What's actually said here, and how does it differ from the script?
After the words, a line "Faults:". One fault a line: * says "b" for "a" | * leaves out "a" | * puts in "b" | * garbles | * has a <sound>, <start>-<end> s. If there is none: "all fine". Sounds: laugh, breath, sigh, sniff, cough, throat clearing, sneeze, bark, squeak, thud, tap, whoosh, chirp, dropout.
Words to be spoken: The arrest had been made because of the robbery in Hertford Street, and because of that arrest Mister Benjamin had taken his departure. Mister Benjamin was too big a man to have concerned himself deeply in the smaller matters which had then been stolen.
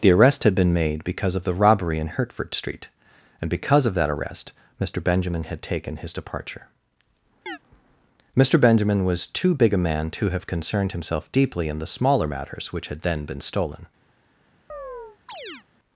The arrest had been made because of the robbery in Hertford Street, and because of that arrest Mister Benjamin had taken his departure. Mister Benjamin was too big a man to have concerned himself deeply in the smaller matters which had then been stolen.
Faults:
* has a chirp, 7.5-7.6 s
* has a chirp, 14.7-15.6 s